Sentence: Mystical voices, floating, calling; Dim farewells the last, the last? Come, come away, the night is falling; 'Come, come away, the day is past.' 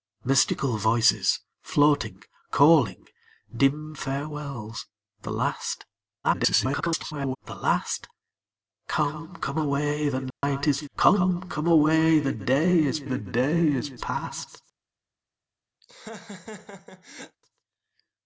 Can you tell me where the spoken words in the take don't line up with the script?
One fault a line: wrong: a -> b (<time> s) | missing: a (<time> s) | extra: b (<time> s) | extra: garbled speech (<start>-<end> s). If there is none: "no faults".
extra: garbled speech (6.2-7.4 s)
missing: falling (10.8 s)
extra: the day is (13.0 s)